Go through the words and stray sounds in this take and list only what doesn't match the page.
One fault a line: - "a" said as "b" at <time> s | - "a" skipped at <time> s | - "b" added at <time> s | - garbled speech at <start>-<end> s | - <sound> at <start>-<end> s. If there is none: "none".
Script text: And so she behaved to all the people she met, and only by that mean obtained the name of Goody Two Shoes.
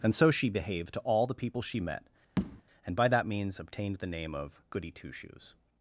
- tap at 2.4-2.6 s
- "only" skipped at 3.0 s
- "mean" said as "means" at 3.3 s